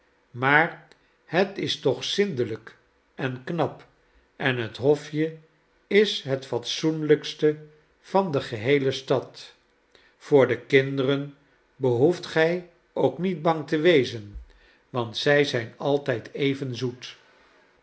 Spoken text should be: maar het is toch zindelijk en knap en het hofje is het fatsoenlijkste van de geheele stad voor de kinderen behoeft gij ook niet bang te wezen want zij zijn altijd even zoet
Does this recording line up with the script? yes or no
yes